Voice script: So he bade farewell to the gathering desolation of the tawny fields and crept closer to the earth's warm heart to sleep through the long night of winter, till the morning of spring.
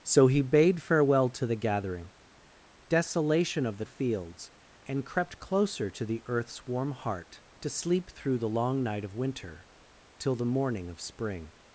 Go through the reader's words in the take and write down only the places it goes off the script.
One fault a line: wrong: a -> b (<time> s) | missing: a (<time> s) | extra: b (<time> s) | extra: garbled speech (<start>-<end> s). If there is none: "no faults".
missing: tawny (3.9 s)